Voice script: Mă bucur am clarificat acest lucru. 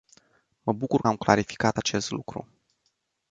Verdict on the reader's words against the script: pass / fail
pass